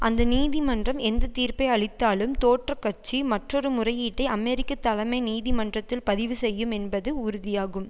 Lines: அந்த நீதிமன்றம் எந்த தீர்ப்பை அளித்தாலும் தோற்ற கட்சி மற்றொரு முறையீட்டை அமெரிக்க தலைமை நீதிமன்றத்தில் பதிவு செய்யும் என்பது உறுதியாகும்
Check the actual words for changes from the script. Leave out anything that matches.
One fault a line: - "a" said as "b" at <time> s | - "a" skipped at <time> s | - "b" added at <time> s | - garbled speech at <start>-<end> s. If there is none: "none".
none